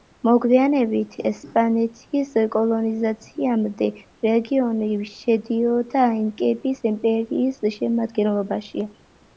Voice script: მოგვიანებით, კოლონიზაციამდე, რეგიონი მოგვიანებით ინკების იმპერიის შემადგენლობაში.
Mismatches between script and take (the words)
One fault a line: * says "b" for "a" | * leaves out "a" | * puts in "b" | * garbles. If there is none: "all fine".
* puts in "ესპანეთის"
* says "შედიოდა" for "მოგვიანებით"